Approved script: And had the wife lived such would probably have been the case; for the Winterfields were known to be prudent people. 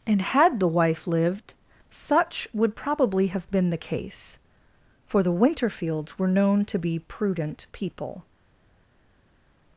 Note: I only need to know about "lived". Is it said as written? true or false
true